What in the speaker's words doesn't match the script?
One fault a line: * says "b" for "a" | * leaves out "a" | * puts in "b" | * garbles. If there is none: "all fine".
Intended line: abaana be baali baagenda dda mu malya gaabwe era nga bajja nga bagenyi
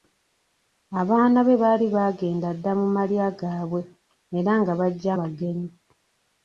* leaves out "nga"